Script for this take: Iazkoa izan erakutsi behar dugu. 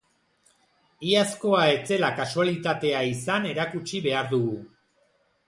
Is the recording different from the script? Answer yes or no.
yes